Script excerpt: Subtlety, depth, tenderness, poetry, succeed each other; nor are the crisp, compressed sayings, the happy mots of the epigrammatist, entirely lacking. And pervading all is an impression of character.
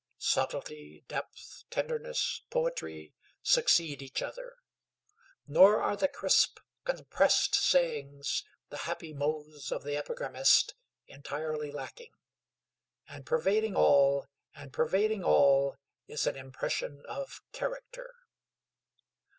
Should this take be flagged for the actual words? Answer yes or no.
yes